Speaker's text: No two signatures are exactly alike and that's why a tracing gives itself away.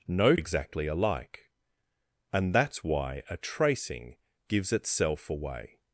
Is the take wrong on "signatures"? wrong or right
wrong